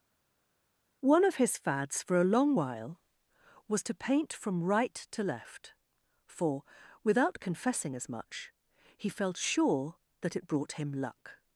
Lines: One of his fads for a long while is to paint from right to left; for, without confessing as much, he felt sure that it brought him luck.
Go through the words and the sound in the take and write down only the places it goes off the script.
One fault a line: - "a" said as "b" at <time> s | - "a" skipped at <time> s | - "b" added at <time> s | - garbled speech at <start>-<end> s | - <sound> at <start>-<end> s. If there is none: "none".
- "is" said as "was" at 3.7 s